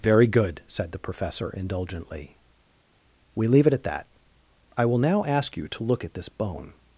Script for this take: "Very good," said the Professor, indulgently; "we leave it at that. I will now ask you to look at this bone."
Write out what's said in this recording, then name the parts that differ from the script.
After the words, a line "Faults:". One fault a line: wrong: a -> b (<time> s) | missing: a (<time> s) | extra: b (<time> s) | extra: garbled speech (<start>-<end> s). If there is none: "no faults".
"Very good," said the Professor, indulgently; "we leave it at that. I will now ask you to look at this bone."
Faults:
no faults